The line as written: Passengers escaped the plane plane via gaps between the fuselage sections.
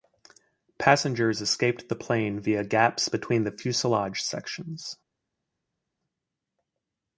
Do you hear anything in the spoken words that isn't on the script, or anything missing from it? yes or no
yes